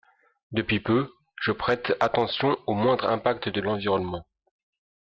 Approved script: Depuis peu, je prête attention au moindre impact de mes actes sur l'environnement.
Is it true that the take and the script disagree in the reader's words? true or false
true